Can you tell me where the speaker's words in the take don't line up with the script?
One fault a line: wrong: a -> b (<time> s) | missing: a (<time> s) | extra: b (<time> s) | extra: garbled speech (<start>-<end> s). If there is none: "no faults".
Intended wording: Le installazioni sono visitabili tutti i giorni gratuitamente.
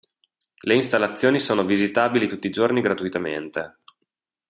no faults